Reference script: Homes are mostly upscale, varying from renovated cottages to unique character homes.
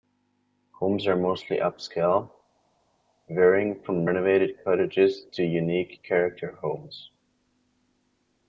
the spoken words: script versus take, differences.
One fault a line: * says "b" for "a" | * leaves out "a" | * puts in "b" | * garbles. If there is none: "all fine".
all fine